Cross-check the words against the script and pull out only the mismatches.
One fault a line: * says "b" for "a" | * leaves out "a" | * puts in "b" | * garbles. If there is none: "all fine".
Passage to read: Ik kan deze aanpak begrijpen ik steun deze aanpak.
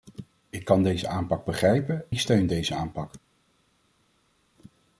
all fine